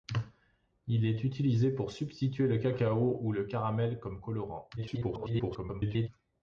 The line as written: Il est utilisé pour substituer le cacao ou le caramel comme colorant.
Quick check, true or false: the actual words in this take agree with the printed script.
false